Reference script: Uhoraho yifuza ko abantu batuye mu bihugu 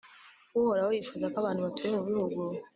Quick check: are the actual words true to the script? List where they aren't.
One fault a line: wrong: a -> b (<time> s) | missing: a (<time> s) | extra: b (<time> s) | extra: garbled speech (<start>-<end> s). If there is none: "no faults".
no faults